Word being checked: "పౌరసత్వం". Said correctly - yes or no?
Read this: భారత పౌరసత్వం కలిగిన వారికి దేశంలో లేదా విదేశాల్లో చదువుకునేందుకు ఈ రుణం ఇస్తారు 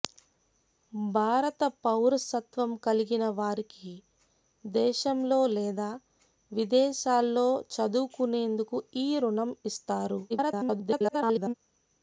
yes